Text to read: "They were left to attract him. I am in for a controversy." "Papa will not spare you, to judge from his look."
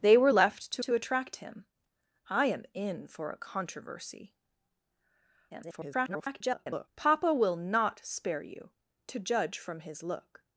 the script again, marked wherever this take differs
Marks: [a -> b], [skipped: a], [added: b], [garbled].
"They were left to [added: to] attract him. I am in for a controversy." [garbled] "Papa will not spare you, to judge from his look."